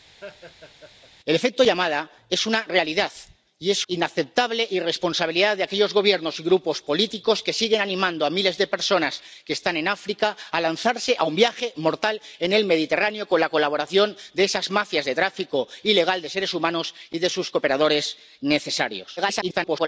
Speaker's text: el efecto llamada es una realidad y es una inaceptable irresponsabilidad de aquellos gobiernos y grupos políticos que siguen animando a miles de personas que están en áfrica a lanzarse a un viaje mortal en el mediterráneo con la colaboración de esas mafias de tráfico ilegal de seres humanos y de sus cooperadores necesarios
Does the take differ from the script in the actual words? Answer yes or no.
yes